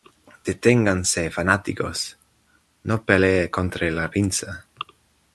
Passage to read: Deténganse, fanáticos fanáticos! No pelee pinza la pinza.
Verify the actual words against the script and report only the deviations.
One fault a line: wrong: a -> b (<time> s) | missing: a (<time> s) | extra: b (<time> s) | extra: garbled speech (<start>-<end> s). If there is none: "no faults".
missing: fanáticos (2.2 s)
wrong: pinza -> contra (3.5 s)